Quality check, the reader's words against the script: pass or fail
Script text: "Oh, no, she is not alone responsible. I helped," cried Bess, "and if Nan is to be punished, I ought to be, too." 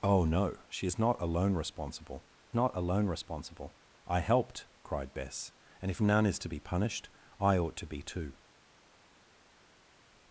fail